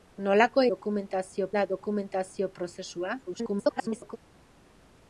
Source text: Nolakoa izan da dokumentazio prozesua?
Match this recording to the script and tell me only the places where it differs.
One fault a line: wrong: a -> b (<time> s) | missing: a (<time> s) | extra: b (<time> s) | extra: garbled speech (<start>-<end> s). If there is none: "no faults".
wrong: izan -> dokumentazio (0.7 s)
extra: garbled speech (3.3-4.2 s)